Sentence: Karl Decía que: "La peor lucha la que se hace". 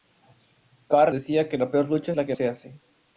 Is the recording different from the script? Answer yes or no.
no